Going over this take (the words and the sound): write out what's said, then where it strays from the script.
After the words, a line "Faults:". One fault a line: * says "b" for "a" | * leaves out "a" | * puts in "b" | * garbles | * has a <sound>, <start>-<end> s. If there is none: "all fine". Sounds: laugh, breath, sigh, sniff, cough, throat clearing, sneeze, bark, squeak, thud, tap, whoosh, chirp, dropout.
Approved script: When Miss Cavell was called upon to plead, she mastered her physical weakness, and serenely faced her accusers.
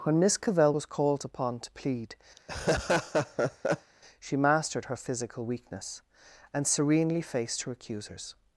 When Miss Cavell was called upon to plead, she mastered her physical weakness, and serenely faced her accusers.
Faults:
* has a laugh, 2.4-3.9 s